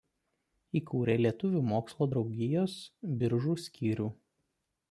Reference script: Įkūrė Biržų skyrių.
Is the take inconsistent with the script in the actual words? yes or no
yes